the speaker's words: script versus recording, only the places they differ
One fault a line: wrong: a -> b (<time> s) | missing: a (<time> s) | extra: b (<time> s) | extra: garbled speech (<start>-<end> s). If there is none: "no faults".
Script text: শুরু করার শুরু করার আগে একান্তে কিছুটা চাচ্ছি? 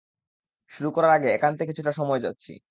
missing: শুরু করার (1.1 s)
extra: সময় (1.9 s)